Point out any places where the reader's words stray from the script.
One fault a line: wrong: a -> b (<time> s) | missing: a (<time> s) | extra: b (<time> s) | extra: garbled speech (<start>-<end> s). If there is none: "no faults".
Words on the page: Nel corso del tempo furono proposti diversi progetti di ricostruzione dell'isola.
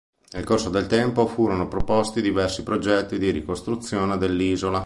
no faults